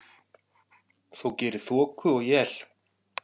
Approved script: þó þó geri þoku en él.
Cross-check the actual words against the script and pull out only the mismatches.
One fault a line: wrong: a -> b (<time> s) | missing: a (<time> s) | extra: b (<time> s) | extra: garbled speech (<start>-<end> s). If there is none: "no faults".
missing: þó (1.3 s)
wrong: en -> og (2.1 s)